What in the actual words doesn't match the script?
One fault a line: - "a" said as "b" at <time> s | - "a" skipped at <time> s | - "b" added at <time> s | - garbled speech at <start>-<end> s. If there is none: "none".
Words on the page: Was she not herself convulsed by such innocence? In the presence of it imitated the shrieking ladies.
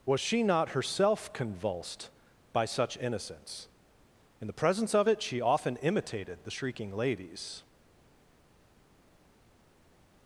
- "she often" added at 5.2 s